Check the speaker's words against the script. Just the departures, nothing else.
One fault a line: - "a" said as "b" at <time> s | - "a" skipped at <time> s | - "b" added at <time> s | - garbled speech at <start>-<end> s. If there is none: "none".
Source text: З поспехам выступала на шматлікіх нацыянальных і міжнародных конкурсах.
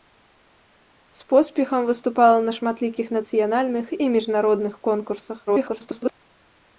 - garbled speech at 5.5-6.1 s